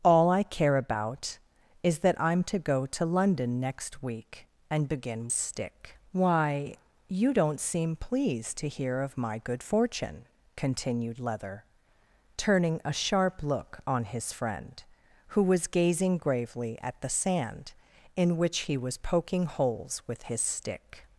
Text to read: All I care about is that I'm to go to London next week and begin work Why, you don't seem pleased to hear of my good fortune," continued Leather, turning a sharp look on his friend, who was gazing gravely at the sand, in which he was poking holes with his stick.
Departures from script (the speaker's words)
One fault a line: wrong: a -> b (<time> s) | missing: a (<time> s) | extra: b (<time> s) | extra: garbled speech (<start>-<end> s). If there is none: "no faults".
wrong: work -> stick (5.3 s)